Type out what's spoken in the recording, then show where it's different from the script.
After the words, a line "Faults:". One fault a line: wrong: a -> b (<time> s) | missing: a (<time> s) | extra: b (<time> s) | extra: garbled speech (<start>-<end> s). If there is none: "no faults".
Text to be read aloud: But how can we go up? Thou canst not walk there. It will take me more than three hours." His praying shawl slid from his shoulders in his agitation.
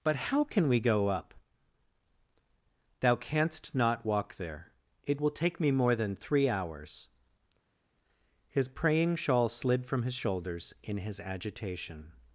But how can we go up? Thou canst not walk there. It will take me more than three hours." His praying shawl slid from his shoulders in his agitation.
Faults:
no faults